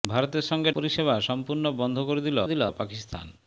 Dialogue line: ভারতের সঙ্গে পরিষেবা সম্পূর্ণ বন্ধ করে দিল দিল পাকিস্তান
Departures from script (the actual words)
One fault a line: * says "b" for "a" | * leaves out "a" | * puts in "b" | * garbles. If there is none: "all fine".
all fine